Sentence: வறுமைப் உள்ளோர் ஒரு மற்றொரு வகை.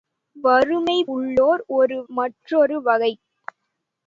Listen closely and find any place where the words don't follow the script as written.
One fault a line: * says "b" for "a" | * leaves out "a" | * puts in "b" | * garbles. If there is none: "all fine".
all fine